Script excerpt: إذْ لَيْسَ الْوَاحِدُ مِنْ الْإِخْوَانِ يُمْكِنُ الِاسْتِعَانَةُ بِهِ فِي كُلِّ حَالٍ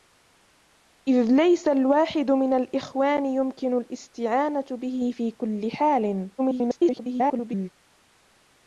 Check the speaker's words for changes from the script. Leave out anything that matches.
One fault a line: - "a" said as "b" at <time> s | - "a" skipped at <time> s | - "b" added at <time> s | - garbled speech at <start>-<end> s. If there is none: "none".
- garbled speech at 6.4-7.7 s